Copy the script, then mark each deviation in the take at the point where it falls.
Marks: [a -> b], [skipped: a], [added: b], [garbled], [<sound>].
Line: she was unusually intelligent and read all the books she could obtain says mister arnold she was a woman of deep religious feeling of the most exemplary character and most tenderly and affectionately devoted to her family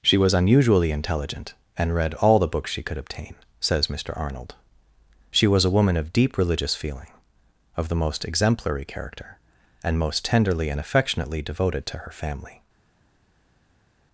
she was unusually intelligent and read all the books she could obtain says mister arnold she was a woman of deep religious feeling of the most exemplary character and most tenderly and affectionately devoted to her family